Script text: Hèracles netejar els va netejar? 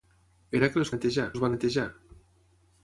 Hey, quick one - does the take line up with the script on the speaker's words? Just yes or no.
yes